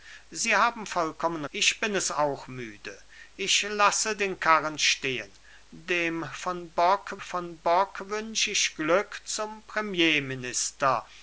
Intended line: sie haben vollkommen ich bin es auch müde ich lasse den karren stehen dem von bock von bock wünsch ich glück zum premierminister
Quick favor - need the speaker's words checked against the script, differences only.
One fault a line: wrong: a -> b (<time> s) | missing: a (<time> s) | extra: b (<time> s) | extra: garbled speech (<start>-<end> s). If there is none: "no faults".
no faults